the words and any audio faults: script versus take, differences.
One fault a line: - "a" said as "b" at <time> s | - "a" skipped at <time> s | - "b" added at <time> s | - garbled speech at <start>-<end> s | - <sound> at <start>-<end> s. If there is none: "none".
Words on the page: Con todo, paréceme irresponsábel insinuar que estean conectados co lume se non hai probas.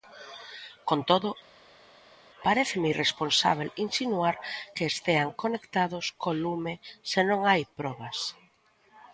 none